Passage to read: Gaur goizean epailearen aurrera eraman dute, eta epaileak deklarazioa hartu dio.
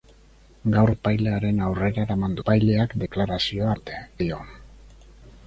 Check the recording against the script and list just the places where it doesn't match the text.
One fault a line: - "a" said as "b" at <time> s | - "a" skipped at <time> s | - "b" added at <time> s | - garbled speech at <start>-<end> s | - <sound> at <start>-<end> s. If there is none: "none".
- "goizean" skipped at 0.9 s
- "dute eta" skipped at 2.4 s
- "hartu" said as "dute" at 3.8 s